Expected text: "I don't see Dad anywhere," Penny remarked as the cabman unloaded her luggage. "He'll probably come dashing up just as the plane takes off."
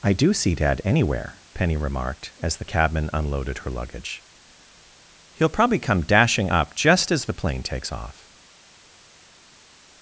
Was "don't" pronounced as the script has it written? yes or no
no